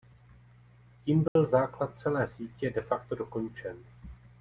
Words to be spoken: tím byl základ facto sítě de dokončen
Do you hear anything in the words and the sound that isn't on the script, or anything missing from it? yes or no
yes